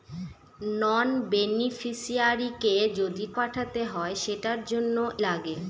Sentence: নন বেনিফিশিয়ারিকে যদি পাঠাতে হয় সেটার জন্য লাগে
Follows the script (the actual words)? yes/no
yes